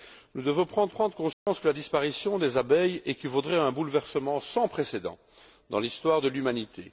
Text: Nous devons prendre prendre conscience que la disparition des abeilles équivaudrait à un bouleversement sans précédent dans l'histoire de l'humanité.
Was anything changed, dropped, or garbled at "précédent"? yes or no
no